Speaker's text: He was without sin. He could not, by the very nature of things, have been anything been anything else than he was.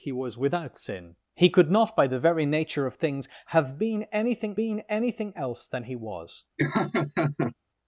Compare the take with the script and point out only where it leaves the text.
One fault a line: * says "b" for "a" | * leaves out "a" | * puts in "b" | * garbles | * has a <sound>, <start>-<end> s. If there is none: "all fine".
* has a laugh, 6.6-7.5 s